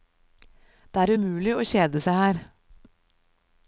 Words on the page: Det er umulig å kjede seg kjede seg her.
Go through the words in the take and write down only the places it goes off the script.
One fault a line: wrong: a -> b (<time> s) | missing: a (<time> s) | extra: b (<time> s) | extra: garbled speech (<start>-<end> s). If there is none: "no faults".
missing: kjede seg (2.2 s)